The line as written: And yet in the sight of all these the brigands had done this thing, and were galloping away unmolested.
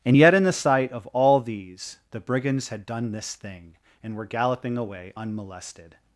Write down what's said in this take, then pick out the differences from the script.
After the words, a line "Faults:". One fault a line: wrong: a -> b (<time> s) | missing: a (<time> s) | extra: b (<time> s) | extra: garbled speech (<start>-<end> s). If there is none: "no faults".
And yet in the sight of all these the brigands had done this thing, and were galloping away unmolested.
Faults:
no faults